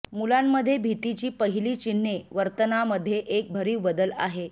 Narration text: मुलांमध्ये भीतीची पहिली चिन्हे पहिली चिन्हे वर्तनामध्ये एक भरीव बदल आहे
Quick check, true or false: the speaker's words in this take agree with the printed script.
false